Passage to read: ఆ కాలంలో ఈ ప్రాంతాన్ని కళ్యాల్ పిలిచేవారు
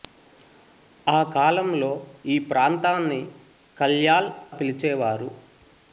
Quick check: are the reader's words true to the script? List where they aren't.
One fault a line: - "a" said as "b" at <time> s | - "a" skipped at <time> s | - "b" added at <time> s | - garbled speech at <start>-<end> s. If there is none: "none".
none